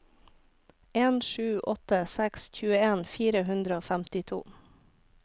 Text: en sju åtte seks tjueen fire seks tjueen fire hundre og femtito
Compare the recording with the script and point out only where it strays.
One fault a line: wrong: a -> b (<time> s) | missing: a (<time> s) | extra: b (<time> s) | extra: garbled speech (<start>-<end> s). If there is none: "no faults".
missing: seks tjueen fire (3.5 s)